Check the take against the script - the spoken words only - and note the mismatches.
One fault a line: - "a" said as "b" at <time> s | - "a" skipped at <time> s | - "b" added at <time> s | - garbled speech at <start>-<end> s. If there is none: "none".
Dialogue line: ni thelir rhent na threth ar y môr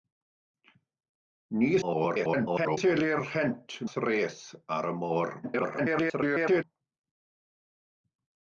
- garbled speech at 1.8-2.8 s
- "na" skipped at 3.8 s
- garbled speech at 5.4-6.6 s